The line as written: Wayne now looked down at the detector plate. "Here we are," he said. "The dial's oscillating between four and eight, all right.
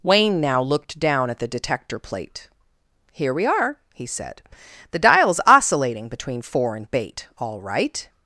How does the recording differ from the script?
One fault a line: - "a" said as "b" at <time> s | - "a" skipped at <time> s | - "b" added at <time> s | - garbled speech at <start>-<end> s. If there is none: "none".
- "eight" said as "bait" at 6.9 s